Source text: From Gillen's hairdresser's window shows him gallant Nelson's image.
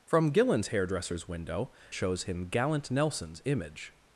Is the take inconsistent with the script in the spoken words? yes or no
no